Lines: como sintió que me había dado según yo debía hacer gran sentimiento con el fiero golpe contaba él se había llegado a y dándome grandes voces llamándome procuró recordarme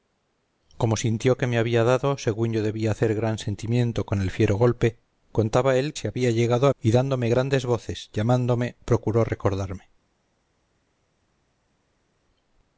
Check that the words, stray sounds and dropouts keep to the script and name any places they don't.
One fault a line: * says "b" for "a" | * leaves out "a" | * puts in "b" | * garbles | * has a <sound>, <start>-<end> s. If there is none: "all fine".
all fine